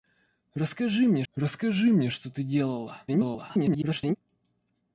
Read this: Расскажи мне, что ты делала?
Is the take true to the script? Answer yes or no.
no